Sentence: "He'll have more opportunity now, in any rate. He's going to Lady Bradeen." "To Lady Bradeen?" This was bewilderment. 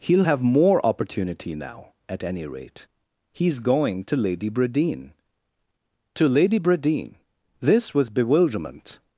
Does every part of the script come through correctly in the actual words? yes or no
no